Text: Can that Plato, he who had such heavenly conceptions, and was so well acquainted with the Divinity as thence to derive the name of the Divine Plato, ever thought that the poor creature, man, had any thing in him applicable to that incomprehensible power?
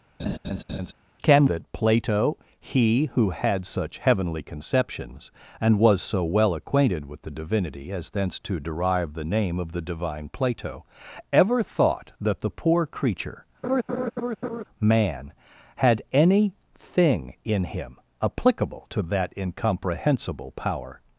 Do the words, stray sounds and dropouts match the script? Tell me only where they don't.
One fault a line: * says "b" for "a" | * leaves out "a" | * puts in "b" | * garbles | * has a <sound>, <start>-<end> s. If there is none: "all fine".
* has a laugh, 0.2-0.9 s
* has a laugh, 13.6-14.6 s